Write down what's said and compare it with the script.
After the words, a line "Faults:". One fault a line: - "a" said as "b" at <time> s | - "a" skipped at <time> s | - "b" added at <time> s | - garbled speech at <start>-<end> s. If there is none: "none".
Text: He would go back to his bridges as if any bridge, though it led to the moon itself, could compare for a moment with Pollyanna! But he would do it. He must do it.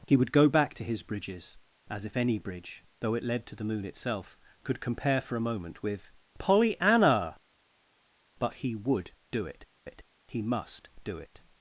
He would go back to his bridges as if any bridge, though it led to the moon itself, could compare for a moment with Pollyanna! But he would do it it. He must do it.
Faults:
- "it" added at 9.8 s